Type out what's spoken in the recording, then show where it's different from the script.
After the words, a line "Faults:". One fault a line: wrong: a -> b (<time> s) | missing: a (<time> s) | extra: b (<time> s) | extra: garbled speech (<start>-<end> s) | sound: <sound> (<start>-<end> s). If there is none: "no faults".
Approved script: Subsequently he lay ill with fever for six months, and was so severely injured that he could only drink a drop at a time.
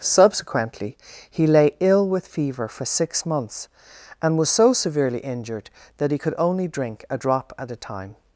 Subsequently he lay ill with fever for six months, and was so severely injured that he could only drink a drop at a time.
Faults:
no faults